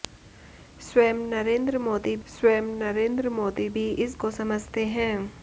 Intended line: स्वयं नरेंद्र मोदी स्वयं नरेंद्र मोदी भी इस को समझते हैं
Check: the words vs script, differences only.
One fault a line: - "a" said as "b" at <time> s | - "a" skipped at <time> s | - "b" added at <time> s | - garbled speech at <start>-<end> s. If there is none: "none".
none